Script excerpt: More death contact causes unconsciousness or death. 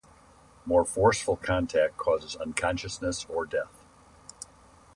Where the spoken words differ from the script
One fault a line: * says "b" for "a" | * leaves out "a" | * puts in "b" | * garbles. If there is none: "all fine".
* says "forceful" for "death"